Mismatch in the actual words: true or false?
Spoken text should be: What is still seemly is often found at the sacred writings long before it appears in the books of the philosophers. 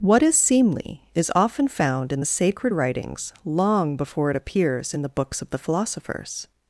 true